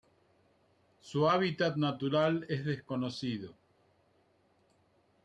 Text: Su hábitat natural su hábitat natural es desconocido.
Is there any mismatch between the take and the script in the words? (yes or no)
yes